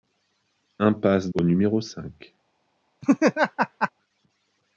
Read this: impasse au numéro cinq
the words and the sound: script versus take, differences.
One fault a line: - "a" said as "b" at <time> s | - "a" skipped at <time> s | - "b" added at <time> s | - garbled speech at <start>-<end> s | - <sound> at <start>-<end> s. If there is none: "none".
- laugh at 3.0-3.9 s